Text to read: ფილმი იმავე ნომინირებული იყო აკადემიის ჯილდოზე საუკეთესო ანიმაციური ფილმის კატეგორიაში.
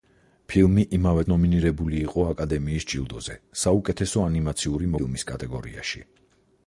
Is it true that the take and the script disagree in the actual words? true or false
false